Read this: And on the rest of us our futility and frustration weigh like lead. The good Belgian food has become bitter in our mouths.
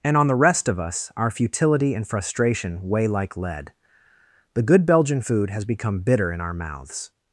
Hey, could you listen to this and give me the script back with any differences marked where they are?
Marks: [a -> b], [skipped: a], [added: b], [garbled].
And on the rest of us our futility and frustration weigh like lead. The good Belgian food has become bitter in our mouths.